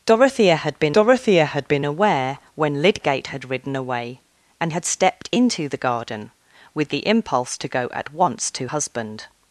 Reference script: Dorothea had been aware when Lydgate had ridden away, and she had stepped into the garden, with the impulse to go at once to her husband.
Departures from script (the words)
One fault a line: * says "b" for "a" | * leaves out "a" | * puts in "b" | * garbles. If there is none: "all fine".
* puts in "dorothea had been"
* leaves out "she"
* leaves out "her"